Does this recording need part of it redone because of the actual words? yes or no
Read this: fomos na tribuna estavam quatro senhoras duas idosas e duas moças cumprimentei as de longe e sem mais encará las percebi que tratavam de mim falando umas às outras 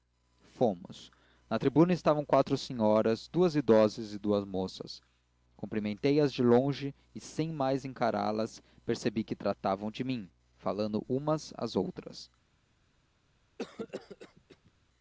no